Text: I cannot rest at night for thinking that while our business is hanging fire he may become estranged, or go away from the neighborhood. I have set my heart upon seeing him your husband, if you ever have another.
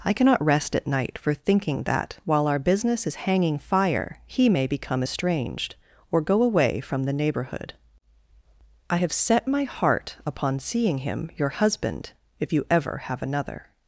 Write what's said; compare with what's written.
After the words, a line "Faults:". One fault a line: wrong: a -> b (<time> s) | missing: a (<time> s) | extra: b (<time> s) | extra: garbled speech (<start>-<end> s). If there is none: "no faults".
I cannot rest at night for thinking that while our business is hanging fire he may become estranged, or go away from the neighborhood. I have set my heart upon seeing him your husband, if you ever have another.
Faults:
no faults